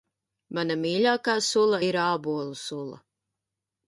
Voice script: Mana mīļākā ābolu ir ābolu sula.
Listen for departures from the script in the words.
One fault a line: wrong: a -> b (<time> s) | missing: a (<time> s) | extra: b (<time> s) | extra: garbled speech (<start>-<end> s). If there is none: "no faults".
wrong: ābolu -> sula (1.5 s)